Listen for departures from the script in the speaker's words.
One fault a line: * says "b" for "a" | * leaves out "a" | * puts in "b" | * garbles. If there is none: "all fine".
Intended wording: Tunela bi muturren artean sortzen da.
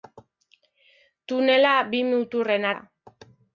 * leaves out "artean sortzen"